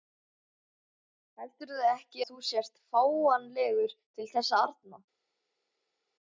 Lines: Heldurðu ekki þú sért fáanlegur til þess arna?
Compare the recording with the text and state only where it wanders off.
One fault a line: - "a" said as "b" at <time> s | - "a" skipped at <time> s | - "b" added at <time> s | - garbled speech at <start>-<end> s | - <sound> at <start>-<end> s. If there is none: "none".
none